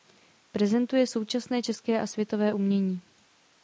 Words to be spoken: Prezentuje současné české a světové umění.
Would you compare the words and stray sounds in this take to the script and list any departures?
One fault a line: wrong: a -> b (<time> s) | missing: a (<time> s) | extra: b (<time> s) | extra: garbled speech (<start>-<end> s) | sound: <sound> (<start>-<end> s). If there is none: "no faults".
no faults